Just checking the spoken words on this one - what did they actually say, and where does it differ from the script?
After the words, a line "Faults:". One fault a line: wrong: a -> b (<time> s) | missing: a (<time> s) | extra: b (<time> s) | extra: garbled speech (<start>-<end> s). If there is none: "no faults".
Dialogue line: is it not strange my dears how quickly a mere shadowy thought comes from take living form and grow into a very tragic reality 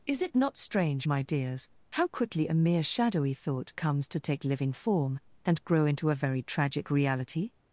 is it not strange my dears how quickly a mere shadowy thought comes to take living form and grow into a very tragic reality
Faults:
wrong: from -> to (4.1 s)